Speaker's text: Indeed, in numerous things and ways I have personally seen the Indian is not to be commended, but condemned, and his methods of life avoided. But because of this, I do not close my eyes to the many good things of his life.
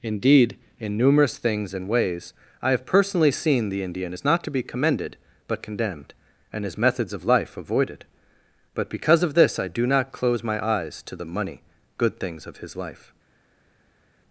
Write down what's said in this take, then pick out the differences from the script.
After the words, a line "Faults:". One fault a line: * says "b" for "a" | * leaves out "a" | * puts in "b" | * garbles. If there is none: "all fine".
Indeed, in numerous things and ways I have personally seen the Indian is not to be commended, but condemned, and his methods of life avoided. But because of this, I do not close my eyes to the money good things of his life.
Faults:
* says "money" for "many"